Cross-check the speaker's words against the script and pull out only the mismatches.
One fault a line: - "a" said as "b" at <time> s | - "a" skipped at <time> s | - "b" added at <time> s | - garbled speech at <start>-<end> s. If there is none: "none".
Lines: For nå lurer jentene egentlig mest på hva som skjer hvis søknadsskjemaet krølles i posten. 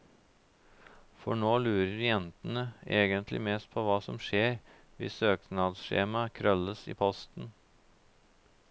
none